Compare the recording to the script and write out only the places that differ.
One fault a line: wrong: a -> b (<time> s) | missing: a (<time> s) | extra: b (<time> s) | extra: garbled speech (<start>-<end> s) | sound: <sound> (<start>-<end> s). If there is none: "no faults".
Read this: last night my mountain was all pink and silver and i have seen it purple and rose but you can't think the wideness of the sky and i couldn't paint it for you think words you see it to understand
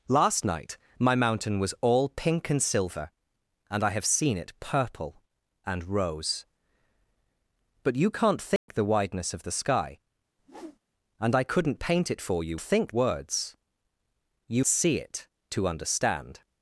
sound: dropout (8.6-8.7 s)
sound: whoosh (10.4-10.8 s)